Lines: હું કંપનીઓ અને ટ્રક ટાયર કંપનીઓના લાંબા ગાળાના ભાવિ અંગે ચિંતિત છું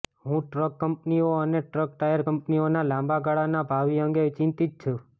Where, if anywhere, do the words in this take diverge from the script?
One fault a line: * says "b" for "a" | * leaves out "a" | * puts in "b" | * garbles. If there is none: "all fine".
* puts in "ટ્રક"